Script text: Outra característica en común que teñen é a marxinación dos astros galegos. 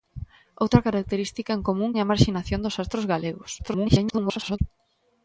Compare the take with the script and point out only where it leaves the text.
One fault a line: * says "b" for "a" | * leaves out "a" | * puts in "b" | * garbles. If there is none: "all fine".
* leaves out "que teñen"
* garbles